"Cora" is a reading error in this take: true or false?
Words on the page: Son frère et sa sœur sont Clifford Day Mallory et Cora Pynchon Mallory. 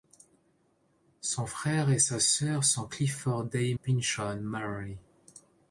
true